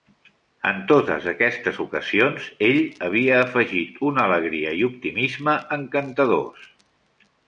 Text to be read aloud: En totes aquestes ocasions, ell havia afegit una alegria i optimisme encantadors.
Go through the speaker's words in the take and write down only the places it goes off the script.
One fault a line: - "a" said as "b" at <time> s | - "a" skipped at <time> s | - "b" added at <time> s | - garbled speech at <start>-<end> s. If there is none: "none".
none